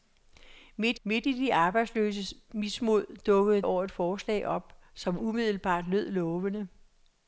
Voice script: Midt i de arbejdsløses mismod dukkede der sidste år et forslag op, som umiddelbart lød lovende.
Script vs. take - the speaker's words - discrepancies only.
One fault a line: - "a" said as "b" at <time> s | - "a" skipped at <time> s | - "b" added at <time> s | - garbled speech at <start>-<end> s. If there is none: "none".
- "midt" added at 1.0 s
- "der sidste" skipped at 3.6 s